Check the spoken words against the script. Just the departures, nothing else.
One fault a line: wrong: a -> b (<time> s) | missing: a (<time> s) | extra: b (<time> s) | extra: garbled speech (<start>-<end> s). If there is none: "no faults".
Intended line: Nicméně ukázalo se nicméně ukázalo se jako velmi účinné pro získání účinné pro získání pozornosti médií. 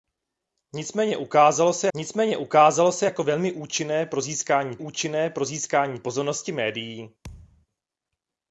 no faults